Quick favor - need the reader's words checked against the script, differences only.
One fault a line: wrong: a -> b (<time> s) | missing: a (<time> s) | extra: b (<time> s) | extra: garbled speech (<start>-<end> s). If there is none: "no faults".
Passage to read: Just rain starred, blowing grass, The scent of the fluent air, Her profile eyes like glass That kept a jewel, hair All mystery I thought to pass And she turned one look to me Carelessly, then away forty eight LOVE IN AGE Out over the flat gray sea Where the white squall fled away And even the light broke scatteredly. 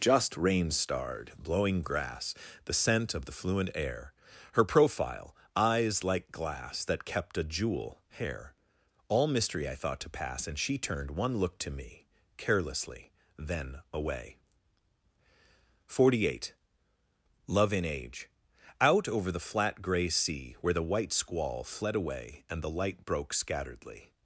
missing: even (22.6 s)